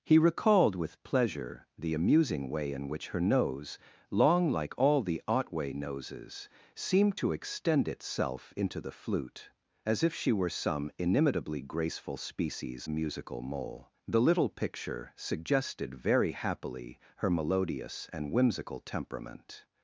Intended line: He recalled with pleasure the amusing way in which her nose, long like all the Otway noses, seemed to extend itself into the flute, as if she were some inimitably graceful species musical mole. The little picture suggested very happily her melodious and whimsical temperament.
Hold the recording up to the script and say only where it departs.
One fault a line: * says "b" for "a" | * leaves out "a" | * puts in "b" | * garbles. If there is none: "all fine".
all fine